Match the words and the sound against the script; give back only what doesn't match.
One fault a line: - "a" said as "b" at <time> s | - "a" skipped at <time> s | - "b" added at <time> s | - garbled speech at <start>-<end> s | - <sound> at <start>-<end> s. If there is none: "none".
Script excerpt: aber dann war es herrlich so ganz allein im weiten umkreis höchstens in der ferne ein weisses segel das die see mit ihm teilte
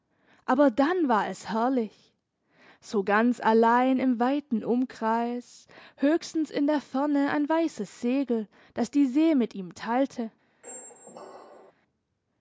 - squeak at 10.6-11.7 s